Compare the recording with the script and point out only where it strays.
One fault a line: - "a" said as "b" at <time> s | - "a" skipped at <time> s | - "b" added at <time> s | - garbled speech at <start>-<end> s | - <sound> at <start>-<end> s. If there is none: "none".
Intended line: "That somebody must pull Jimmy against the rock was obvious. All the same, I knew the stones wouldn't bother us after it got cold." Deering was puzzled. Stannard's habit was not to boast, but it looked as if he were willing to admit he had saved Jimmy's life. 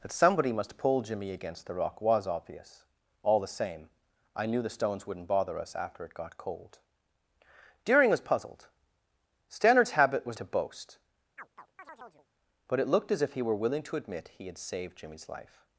- "not" skipped at 10.4 s
- chirp at 11.4-12.3 s